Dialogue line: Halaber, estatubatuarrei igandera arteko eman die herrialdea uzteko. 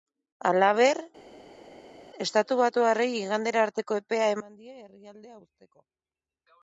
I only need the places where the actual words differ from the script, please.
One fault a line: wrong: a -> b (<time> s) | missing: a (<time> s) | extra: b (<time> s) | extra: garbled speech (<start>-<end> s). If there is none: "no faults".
extra: epea (4.0 s)